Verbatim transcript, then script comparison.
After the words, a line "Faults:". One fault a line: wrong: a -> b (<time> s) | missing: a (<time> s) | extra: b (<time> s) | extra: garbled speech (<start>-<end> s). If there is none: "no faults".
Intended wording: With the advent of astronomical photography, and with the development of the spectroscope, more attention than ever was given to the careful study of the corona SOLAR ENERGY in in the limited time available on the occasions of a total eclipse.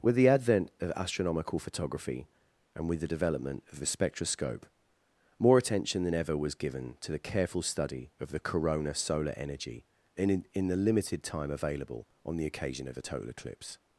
With the advent of astronomical photography, and with the development of the spectroscope, more attention than ever was given to the careful study of the corona SOLAR ENERGY in in the limited time available on the occasion of a total eclipse.
Faults:
wrong: occasions -> occasion (12.5 s)